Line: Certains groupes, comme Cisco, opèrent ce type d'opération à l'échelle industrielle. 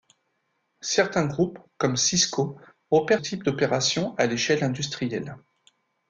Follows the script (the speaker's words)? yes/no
no